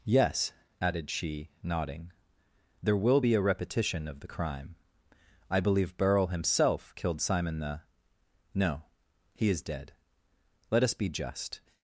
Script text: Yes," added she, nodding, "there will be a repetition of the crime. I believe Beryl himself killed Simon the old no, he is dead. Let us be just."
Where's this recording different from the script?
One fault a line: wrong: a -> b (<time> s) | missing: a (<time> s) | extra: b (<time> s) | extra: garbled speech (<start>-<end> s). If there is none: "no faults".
missing: old (7.8 s)